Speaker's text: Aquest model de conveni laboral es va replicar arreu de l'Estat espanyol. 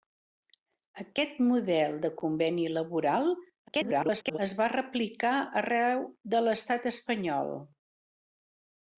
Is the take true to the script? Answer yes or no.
no